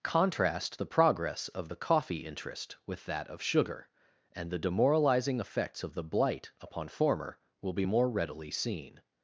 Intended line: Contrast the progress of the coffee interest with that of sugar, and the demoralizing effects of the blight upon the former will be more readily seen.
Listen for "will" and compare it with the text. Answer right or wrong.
right